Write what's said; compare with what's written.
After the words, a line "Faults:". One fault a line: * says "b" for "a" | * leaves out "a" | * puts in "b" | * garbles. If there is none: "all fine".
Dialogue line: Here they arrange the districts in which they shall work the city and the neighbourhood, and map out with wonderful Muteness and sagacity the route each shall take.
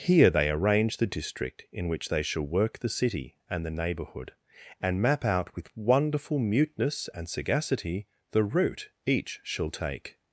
Here they arrange the district in which they shall work the city and the neighbourhood, and map out with wonderful Muteness and sagacity the route each shall take.
Faults:
* says "district" for "districts"